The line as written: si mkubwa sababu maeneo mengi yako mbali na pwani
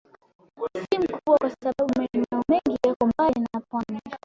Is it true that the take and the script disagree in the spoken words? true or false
true